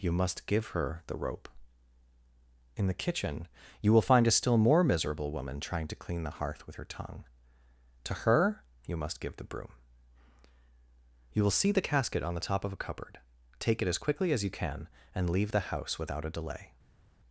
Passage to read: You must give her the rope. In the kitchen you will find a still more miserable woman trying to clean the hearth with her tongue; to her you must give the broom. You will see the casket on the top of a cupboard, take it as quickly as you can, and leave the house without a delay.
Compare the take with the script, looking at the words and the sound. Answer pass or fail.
pass